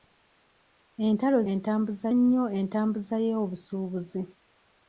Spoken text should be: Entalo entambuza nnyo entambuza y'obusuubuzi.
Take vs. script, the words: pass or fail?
pass